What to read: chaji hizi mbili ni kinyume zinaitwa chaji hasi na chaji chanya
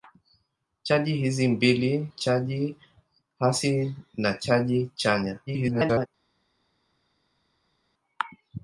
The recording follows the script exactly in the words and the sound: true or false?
false